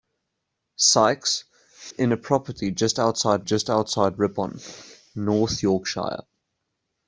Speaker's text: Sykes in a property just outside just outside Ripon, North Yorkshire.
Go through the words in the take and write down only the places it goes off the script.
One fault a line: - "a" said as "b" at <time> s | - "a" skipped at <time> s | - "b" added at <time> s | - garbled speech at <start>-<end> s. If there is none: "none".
none